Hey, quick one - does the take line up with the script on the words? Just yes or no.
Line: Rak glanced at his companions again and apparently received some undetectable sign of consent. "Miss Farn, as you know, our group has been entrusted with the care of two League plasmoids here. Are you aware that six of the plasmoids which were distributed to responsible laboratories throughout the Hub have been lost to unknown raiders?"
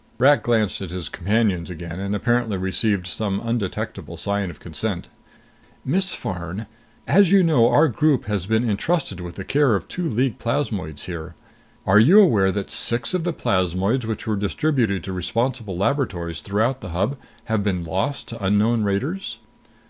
yes